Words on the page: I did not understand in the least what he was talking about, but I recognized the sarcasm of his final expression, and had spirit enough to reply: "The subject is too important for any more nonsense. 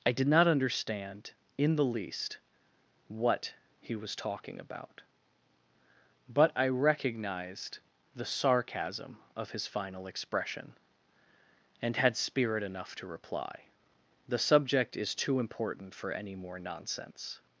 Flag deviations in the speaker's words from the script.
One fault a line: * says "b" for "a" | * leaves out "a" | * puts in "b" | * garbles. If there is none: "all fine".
all fine